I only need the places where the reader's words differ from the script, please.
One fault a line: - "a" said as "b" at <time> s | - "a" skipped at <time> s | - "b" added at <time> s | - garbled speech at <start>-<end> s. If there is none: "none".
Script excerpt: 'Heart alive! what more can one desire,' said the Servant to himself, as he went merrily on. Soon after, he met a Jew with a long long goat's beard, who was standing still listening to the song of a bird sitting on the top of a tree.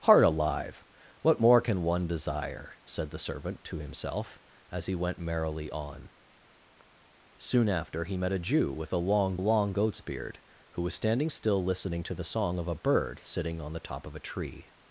none